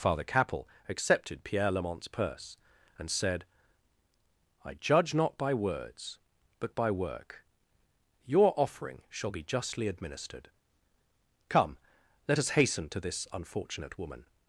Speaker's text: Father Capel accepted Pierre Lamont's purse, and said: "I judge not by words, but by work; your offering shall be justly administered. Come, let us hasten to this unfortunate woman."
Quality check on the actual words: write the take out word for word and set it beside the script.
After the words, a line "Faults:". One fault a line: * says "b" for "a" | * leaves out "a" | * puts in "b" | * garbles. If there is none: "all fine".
Father Capel accepted Pierre Lamont's purse, and said: "I judge not by words, but by work; your offering shall be justly administered. Come, let us hasten to this unfortunate woman."
Faults:
all fine